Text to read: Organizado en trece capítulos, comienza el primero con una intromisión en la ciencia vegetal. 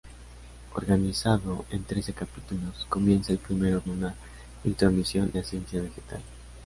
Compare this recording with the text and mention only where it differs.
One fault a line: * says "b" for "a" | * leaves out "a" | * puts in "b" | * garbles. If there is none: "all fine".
* leaves out "con"
* leaves out "en"